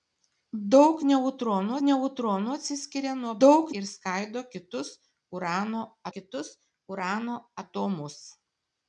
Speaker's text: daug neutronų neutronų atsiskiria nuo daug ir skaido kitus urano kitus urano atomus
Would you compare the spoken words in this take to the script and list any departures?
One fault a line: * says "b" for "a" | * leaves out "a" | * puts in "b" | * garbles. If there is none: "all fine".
all fine